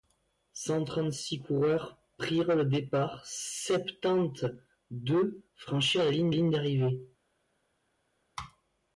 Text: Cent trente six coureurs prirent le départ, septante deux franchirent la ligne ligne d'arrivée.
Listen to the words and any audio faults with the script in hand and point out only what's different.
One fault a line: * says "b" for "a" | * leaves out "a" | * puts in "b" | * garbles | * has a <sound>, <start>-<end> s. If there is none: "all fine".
all fine